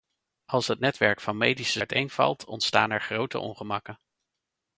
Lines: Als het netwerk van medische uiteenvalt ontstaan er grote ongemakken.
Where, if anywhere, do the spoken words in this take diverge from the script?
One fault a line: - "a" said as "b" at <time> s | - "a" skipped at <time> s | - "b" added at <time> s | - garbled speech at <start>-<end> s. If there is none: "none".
none